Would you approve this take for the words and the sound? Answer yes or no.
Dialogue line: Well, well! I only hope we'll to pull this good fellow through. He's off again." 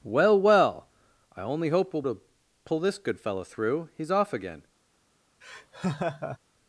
no